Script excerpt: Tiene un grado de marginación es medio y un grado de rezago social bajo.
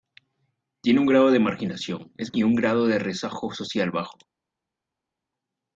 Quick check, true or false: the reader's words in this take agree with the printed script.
false